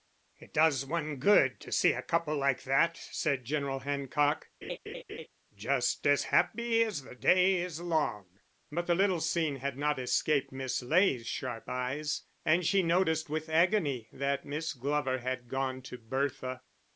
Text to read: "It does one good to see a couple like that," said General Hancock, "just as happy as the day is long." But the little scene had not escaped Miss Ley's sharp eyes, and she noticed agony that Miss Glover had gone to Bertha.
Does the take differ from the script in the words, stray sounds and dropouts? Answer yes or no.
yes